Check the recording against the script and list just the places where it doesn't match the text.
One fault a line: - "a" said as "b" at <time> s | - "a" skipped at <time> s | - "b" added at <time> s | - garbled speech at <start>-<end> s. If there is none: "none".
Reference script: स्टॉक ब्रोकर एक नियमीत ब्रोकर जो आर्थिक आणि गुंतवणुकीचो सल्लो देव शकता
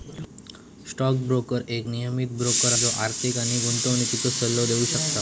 none